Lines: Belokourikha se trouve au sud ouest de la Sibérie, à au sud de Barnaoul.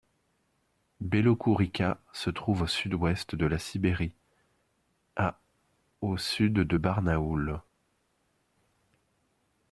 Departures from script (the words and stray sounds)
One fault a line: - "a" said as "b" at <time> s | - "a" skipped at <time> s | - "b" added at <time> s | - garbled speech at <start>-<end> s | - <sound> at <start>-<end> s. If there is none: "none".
none